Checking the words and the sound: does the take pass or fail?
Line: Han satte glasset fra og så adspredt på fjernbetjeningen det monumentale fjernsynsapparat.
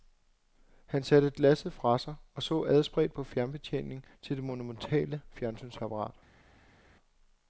fail